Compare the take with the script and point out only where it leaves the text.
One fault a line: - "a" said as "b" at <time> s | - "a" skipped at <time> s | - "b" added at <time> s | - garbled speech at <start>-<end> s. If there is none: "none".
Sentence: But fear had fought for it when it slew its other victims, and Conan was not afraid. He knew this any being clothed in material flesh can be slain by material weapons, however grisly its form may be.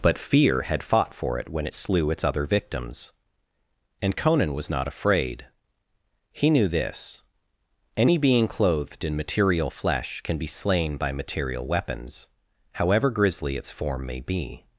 none